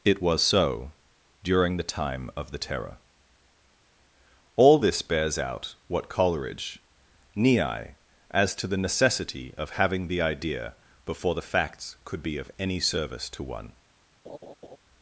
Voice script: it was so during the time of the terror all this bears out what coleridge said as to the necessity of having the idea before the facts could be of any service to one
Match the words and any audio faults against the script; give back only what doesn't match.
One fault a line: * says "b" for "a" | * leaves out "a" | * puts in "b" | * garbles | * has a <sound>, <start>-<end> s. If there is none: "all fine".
* says "nii" for "said"
* has a laugh, 14.2-14.8 s